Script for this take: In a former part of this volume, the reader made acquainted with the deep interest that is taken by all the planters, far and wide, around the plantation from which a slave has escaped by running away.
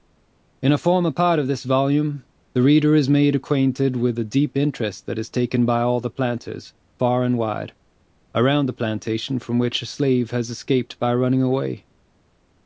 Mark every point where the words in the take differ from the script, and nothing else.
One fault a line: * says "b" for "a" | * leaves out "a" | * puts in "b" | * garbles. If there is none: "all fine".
* puts in "is"